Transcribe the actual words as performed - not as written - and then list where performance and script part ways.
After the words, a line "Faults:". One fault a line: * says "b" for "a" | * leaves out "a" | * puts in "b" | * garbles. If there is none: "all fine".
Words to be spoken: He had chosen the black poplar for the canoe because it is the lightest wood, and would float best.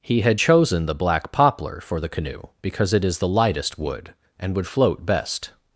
He had chosen the black poplar for the canoe because it is the lightest wood, and would float best.
Faults:
all fine